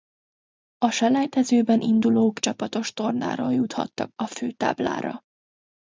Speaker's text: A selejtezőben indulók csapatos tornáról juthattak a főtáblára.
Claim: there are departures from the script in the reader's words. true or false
false